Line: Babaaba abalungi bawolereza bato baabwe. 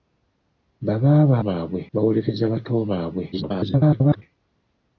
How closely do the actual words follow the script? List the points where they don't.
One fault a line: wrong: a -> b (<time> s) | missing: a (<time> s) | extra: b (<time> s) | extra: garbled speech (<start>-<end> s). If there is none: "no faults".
wrong: abalungi -> baabwe (1.5 s)
extra: garbled speech (3.3-4.2 s)